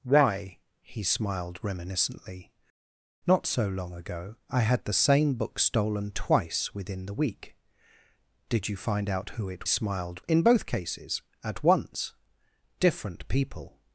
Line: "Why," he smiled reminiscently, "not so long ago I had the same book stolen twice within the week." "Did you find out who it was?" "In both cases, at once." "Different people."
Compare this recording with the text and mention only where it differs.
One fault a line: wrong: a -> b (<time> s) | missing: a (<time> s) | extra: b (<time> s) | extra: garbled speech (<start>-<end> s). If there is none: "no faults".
wrong: was -> smiled (9.6 s)